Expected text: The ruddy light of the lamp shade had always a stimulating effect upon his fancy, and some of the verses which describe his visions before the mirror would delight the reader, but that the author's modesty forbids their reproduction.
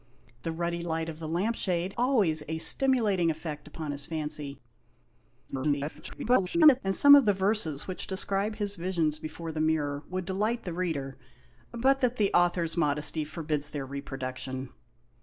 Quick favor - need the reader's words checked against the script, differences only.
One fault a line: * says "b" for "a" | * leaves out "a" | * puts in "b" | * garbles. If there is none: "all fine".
* leaves out "had"
* garbles